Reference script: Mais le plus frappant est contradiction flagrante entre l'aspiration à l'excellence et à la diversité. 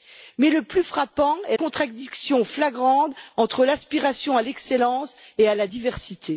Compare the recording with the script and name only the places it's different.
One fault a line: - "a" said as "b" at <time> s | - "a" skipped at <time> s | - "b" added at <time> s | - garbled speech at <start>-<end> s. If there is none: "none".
none